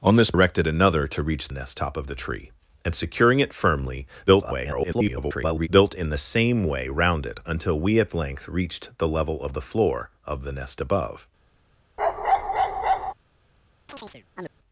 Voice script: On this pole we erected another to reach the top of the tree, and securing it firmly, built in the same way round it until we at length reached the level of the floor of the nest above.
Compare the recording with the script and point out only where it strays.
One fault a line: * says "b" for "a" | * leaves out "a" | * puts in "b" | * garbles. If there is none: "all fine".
* leaves out "pole we"
* says "nest" for "the"
* garbles